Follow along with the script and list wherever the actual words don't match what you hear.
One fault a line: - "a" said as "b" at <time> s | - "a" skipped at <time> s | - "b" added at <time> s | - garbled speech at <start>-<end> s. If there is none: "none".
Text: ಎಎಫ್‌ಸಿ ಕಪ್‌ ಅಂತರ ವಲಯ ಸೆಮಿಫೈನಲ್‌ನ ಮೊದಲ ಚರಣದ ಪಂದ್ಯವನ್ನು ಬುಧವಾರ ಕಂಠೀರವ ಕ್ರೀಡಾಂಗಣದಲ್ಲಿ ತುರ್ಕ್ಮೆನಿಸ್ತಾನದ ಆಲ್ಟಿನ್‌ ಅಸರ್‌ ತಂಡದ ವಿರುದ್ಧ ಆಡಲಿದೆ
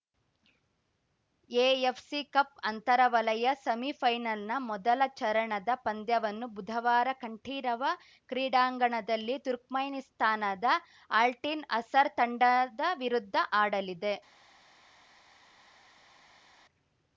none